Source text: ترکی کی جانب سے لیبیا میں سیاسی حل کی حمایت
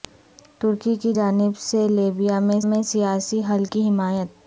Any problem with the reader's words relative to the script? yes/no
yes